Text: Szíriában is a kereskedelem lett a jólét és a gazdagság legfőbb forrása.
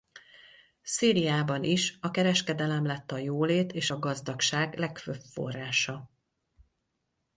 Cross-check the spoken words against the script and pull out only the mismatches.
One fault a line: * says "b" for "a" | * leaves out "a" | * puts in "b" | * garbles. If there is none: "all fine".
all fine